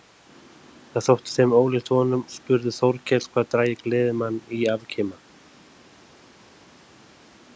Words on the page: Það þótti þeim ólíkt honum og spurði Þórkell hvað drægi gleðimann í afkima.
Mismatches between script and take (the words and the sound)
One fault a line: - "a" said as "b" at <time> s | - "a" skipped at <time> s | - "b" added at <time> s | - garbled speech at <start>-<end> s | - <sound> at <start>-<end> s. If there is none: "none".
- "og" skipped at 2.2 s